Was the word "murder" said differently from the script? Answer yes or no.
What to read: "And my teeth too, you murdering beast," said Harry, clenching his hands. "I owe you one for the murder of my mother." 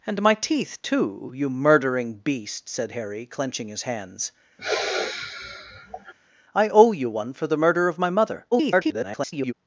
no